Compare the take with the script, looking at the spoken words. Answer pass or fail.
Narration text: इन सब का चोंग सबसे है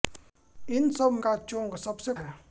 pass